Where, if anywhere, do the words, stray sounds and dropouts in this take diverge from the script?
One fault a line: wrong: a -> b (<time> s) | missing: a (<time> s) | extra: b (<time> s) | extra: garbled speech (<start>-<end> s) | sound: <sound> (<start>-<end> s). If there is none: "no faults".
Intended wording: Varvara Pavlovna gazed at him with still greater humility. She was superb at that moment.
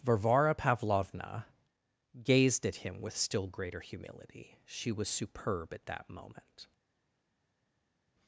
no faults